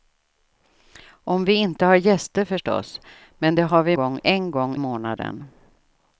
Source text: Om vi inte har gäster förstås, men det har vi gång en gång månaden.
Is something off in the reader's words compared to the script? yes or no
no